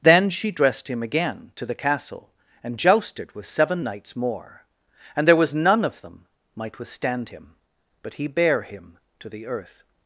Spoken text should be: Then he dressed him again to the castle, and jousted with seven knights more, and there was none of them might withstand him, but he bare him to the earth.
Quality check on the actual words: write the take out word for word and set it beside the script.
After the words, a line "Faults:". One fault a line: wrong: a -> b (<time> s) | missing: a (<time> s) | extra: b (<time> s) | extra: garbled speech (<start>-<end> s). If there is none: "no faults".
Then she dressed him again to the castle, and jousted with seven knights more, and there was none of them might withstand him, but he bare him to the earth.
Faults:
wrong: he -> she (0.3 s)